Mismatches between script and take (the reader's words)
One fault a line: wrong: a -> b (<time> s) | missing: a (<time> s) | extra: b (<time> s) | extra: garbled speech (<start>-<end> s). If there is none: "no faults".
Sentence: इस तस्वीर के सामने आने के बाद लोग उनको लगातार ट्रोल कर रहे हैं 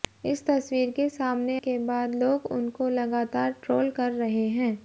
missing: आने (1.6 s)